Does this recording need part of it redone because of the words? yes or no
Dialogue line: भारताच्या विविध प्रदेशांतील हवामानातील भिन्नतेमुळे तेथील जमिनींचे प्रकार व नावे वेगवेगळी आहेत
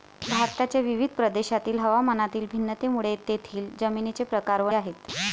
yes